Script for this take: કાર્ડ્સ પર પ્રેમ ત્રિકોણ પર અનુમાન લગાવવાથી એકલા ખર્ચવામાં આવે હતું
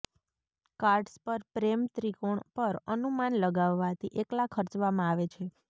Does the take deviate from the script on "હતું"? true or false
true